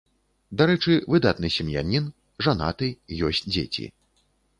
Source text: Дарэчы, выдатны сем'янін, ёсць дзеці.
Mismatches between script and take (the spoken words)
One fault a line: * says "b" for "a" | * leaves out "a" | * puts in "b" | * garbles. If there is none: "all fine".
* puts in "жанаты"